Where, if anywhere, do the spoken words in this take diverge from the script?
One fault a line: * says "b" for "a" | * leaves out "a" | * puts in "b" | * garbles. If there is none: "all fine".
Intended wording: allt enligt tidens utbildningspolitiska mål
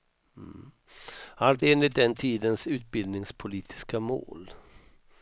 * puts in "den"